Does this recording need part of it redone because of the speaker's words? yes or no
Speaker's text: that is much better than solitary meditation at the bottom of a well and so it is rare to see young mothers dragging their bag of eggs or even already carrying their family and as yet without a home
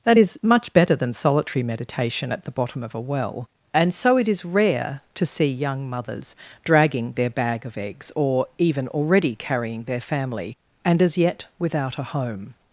no